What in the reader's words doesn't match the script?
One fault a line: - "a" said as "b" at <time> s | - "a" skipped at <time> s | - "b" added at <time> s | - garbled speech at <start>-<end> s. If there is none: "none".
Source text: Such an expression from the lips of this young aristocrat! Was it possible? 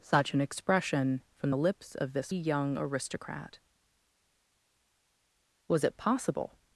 none